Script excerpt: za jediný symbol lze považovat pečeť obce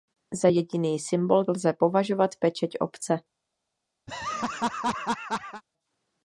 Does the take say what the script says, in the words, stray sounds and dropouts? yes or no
no